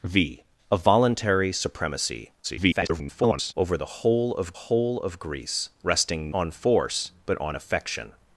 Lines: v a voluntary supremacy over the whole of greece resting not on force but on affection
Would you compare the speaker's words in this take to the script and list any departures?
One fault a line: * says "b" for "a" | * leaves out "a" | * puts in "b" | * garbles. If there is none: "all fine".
* garbles
* puts in "whole of"
* leaves out "not"